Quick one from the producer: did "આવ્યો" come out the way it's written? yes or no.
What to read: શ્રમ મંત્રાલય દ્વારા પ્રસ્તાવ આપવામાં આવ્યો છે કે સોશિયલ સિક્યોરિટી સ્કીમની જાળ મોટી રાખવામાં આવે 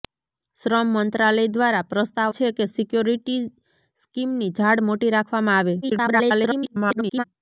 no